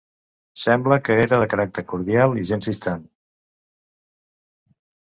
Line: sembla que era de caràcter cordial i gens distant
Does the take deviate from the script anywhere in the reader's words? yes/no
no